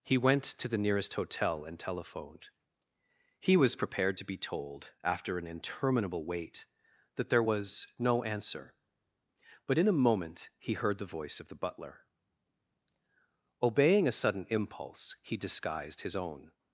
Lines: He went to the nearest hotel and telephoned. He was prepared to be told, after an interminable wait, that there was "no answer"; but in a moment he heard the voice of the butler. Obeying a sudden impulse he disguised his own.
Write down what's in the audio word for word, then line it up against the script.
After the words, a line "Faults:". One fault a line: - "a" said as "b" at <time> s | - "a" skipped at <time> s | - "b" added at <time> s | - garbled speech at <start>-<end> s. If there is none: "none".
He went to the nearest hotel and telephoned. He was prepared to be told, after an interminable wait, that there was "no answer"; but in a moment he heard the voice of the butler. Obeying a sudden impulse he disguised his own.
Faults:
none